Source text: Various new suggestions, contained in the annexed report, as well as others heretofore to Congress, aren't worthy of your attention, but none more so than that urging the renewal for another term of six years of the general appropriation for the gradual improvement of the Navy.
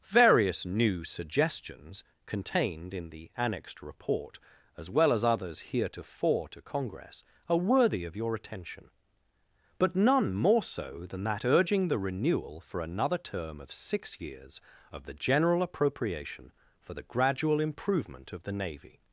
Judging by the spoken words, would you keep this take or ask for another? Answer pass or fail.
fail